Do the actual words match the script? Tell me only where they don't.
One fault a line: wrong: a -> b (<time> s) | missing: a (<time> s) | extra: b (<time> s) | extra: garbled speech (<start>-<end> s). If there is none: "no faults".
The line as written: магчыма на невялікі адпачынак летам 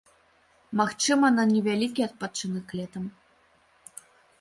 no faults